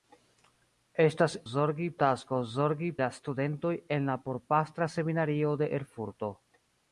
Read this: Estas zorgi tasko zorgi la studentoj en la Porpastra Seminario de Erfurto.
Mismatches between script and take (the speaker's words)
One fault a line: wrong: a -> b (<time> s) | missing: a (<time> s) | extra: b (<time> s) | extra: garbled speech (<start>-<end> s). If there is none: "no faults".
no faults